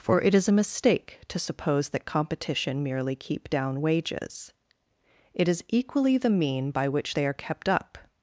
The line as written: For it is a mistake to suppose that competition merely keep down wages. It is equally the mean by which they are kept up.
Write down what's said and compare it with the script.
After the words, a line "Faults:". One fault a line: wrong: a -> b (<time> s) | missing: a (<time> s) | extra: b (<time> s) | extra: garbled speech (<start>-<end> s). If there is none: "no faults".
For it is a mistake to suppose that competition merely keep down wages. It is equally the mean by which they are kept up.
Faults:
no faults